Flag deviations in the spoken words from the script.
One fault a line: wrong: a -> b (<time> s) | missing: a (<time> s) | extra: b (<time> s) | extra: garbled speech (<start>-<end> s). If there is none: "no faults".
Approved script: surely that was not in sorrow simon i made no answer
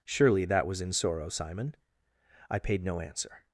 missing: not (0.8 s)
wrong: made -> paid (2.6 s)